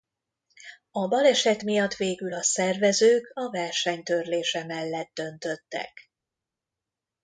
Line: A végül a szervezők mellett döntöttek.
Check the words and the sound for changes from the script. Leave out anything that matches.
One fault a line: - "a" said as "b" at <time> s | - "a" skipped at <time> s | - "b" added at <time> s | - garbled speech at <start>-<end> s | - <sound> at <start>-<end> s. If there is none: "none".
- "baleset miatt" added at 1.1 s
- "a verseny törlése" added at 3.3 s